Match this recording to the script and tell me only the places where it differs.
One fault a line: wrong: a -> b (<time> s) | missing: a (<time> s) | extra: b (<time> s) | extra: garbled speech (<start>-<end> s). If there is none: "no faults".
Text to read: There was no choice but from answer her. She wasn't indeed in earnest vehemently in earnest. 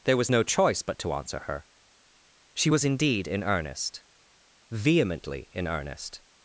wrong: from -> to (1.0 s)
wrong: wasn't -> was (2.7 s)